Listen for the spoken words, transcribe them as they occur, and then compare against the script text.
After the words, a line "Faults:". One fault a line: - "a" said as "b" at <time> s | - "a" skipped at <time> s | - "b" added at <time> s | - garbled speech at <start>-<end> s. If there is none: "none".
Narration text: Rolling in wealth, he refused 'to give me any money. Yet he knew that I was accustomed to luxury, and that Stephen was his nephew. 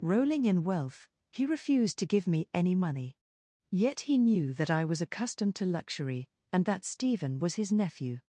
Rolling in wealth, he refused 'to give me any money. Yet he knew that I was accustomed to luxury, and that Stephen was his nephew.
Faults:
none